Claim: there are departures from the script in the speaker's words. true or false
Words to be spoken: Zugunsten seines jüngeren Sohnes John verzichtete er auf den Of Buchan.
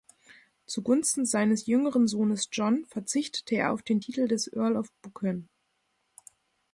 true